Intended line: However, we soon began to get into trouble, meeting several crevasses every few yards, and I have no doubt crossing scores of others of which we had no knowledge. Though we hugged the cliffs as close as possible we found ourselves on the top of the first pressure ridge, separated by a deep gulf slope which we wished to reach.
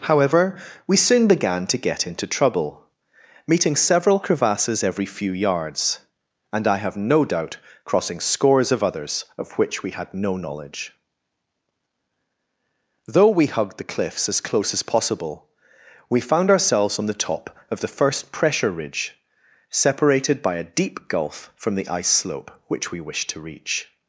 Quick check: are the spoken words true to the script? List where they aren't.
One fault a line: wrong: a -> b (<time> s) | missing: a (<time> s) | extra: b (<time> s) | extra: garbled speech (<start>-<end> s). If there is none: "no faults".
extra: from the ice (21.6 s)